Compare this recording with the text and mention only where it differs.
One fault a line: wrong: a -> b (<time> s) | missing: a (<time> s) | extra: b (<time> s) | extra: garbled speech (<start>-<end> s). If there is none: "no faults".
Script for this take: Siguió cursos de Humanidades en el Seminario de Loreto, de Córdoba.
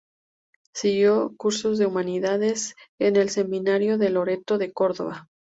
no faults